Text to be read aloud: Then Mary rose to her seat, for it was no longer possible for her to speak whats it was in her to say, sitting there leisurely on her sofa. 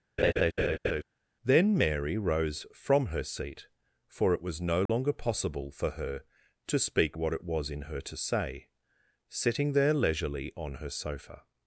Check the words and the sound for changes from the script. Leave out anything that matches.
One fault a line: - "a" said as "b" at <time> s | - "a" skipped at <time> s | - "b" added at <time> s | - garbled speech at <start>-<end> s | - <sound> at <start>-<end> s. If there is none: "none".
- laugh at 0.2-1.0 s
- "to" said as "from" at 2.7 s
- dropout at 4.9-4.9 s
- "whats" said as "what" at 7.2 s